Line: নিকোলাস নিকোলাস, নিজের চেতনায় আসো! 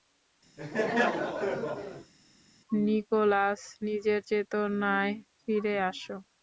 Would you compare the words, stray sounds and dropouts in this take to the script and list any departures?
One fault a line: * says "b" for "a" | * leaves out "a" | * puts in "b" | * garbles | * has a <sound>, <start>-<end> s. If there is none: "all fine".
* has a laugh, 0.6-2.1 s
* leaves out "নিকোলাস"
* puts in "ফিরে"